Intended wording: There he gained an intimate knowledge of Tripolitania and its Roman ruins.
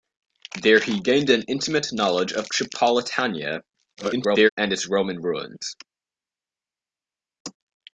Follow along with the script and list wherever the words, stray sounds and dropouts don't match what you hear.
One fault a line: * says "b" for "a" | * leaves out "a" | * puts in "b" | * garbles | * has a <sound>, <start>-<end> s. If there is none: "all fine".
* garbles